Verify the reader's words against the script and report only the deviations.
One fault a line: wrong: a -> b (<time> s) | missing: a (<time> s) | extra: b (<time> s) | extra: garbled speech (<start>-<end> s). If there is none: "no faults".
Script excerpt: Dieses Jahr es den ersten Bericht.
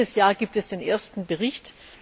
extra: gibt (0.3 s)